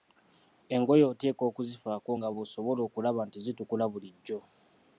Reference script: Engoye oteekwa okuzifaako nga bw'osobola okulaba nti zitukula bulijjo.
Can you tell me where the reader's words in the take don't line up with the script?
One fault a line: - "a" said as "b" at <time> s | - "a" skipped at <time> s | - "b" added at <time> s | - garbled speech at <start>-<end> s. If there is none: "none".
none